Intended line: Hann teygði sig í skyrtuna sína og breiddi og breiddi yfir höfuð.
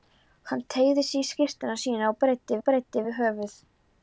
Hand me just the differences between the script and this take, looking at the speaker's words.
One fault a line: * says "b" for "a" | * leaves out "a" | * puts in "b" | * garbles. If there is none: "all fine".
all fine